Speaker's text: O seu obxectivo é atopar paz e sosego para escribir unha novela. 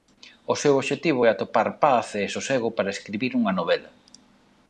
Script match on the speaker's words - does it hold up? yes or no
yes